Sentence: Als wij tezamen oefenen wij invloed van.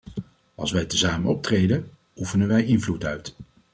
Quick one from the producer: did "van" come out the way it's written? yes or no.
no